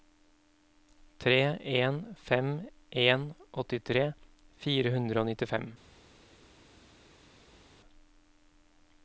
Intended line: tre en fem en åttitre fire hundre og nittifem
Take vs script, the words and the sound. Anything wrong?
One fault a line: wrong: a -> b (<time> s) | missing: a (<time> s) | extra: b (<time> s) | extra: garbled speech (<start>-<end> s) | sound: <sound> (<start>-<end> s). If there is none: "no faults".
no faults